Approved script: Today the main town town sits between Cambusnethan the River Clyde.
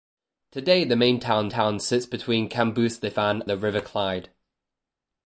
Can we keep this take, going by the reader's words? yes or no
yes